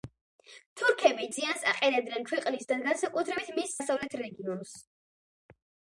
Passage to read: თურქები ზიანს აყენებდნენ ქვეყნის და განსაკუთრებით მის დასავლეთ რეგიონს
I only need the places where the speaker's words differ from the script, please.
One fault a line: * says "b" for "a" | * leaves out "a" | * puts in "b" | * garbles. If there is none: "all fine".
all fine